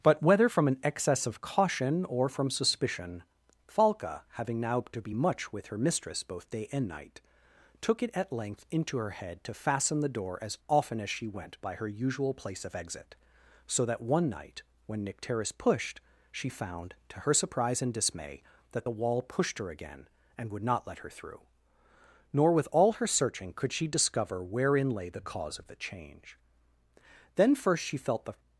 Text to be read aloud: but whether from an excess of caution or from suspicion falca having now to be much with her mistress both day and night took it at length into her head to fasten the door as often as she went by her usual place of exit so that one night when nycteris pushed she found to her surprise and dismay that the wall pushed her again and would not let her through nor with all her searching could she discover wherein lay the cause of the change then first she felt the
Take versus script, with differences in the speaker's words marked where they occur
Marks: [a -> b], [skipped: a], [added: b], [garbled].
but whether from an excess of caution or from suspicion falca having now to be much with her mistress both day and night took it at length into her head to fasten the door as often as she went by her usual place of exit so that one night when nycteris pushed she found to her surprise and dismay that the wall pushed her again and would not let her through nor with all her searching could she discover wherein lay the cause of the change then first she felt the